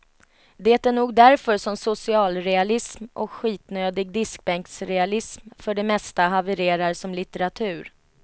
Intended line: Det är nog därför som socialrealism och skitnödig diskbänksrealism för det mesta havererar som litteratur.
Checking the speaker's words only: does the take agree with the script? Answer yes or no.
yes